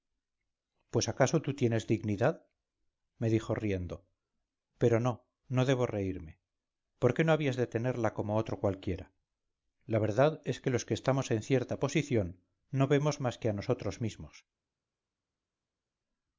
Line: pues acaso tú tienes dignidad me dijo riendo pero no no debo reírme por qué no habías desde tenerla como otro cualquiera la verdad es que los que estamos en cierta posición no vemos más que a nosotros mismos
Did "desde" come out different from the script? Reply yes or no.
yes